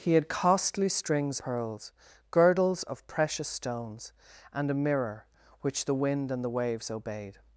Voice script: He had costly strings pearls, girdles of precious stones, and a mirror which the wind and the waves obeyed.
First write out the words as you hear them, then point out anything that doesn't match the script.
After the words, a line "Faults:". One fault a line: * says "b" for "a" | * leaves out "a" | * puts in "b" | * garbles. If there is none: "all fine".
He had costly strings pearls, girdles of precious stones, and a mirror which the wind and the waves obeyed.
Faults:
all fine